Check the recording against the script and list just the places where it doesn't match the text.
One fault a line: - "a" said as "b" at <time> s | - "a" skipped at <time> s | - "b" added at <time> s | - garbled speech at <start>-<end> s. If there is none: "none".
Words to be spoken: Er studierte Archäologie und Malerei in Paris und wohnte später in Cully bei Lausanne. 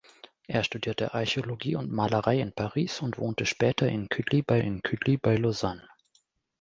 - "in Cully bei" added at 4.6 s